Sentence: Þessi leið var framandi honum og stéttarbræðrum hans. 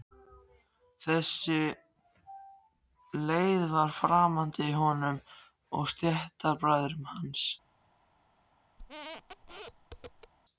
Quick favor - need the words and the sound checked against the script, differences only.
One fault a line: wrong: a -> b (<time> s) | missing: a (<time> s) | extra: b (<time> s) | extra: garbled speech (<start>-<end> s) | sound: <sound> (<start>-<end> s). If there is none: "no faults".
sound: squeak (8.8-10.3 s)